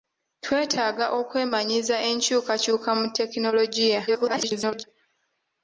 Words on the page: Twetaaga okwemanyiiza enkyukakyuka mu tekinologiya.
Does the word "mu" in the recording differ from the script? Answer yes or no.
no